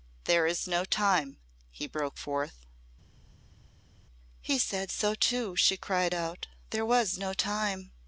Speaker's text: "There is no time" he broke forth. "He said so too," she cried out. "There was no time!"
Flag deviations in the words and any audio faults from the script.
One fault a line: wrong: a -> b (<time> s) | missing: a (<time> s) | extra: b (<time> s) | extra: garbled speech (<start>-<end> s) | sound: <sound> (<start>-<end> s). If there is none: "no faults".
no faults